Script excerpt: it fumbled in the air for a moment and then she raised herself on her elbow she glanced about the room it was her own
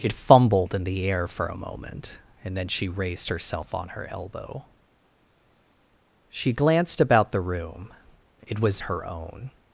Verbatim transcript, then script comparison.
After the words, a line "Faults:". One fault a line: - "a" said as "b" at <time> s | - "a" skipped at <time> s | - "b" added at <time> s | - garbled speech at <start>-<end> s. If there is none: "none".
it fumbled in the air for a moment and then she raised herself on her elbow she glanced about the room it was her own
Faults:
none